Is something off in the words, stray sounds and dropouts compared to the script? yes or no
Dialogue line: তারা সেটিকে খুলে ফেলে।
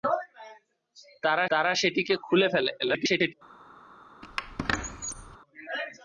yes